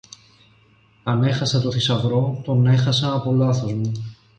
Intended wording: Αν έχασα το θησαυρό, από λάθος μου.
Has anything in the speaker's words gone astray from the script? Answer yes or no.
yes